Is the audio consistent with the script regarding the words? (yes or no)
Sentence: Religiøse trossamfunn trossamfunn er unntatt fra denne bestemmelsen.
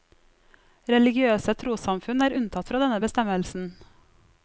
no